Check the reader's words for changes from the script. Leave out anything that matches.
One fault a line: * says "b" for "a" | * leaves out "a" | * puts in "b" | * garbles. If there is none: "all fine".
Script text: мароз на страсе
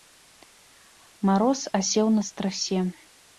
* puts in "асеў"